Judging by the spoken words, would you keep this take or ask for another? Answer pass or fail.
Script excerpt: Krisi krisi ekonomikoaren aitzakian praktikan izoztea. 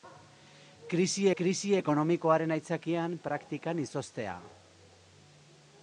pass